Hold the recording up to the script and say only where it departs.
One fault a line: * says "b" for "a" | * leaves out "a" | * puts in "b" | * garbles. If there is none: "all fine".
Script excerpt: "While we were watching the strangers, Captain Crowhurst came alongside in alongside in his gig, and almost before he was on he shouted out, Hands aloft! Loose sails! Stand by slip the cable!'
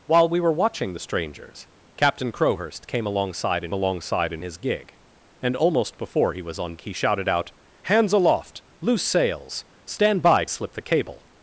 all fine